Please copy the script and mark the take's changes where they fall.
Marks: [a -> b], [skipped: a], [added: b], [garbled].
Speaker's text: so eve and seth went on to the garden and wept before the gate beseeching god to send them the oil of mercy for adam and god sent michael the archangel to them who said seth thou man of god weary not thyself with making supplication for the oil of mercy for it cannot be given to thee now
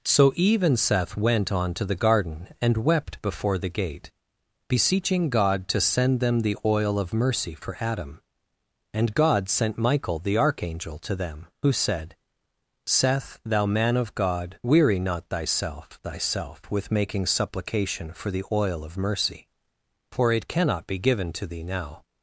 so eve and seth went on to the garden and wept before the gate beseeching god to send them the oil of mercy for adam and god sent michael the archangel to them who said seth thou man of god weary not thyself [added: thyself] with making supplication for the oil of mercy for it cannot be given to thee now